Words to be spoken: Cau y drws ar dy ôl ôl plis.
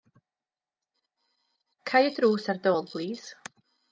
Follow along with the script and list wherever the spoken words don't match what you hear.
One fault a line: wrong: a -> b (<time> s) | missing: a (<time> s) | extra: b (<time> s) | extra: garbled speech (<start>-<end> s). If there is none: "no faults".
missing: ôl (2.9 s)